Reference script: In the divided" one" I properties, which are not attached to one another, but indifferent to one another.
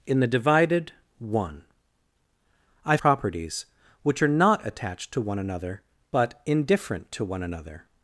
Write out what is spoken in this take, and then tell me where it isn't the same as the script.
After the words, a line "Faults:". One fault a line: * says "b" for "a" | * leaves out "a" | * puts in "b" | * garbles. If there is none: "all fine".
In the divided" one" I properties, which are not attached to one another, but indifferent to one another.
Faults:
all fine